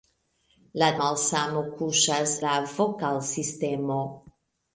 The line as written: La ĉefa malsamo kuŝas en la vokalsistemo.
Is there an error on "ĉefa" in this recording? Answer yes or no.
yes